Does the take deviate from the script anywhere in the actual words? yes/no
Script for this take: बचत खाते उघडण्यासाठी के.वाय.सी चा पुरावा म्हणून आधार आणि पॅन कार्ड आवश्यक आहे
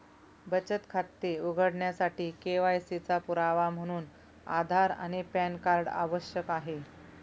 no